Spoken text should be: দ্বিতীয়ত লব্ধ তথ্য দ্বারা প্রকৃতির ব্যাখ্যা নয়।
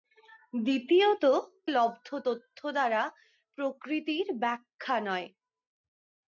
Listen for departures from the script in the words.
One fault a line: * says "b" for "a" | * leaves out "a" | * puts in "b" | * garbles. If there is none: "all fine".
all fine